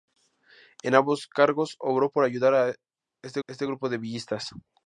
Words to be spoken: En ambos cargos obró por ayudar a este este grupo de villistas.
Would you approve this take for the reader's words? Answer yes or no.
yes